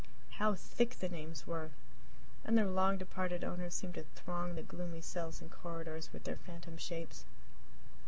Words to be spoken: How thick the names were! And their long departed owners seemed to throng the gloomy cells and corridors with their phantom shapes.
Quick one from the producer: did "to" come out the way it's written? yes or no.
yes